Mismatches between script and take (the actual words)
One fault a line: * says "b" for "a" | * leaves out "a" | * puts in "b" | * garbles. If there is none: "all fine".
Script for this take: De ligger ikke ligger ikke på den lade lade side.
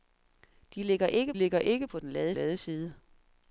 all fine